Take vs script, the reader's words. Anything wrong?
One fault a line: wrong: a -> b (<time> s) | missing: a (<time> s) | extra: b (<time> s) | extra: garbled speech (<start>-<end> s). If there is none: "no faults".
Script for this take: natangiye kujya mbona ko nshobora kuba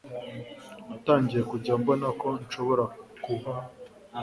no faults